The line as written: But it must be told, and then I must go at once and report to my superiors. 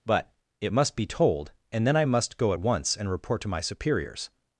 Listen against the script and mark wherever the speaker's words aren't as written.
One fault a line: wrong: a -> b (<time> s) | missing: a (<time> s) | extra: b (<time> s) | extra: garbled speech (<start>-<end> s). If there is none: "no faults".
no faults